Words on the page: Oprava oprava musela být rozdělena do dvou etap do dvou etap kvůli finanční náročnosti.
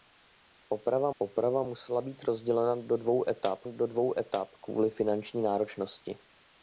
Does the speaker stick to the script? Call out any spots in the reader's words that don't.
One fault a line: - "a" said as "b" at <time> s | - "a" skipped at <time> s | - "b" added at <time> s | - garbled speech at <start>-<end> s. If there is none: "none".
none